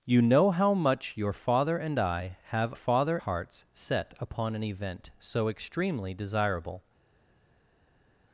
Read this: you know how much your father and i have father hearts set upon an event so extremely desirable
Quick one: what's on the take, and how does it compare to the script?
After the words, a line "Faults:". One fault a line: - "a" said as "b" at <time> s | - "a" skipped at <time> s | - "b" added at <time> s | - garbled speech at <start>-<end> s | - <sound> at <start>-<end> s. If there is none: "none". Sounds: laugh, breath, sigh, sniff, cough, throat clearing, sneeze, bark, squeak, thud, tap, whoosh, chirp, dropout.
you know how much your father and i have father hearts set upon an event so extremely desirable
Faults:
none